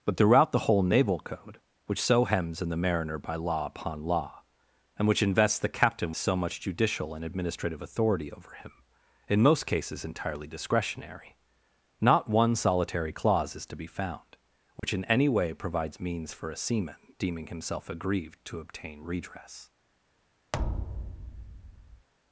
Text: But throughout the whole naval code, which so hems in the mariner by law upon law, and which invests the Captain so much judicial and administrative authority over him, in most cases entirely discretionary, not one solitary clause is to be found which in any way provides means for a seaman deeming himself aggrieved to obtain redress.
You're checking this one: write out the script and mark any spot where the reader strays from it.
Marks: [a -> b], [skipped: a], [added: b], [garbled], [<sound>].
But throughout the whole naval code, which so hems in the mariner by law upon law, and which invests the Captain so much judicial and administrative authority over him, in most cases entirely discretionary, not one solitary clause is to be found which [dropout] in any way provides means for a seaman deeming himself aggrieved to obtain redress. [thud]